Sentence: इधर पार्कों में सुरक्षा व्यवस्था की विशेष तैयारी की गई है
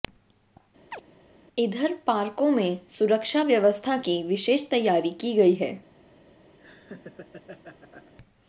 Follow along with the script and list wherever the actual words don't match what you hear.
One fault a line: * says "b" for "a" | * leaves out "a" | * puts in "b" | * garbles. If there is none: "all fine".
all fine